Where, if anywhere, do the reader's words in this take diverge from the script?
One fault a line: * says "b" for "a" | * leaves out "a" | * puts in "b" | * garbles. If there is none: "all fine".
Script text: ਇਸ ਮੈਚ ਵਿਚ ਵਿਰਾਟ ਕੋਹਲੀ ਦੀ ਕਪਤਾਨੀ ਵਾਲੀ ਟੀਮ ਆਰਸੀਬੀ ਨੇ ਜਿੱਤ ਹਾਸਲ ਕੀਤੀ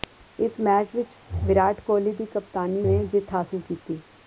* leaves out "ਵਾਲੀ ਟੀਮ ਆਰਸੀਬੀ"